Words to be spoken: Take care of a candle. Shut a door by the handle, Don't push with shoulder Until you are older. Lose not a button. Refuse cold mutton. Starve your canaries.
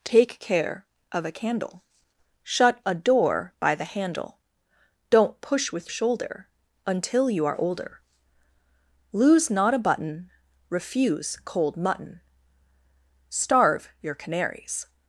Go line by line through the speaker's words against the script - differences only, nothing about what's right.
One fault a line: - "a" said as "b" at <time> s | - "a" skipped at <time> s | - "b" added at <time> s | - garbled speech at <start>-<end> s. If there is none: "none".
none